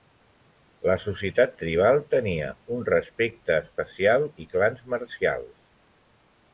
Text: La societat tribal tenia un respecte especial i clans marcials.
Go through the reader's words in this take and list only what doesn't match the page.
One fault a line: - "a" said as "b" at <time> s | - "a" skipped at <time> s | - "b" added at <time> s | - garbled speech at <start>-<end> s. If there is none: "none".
none